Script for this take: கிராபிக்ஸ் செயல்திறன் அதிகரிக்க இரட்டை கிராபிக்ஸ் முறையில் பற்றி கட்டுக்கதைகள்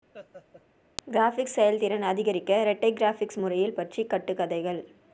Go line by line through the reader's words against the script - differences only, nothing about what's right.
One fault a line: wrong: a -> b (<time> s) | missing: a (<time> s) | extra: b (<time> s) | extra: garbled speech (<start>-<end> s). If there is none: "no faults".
no faults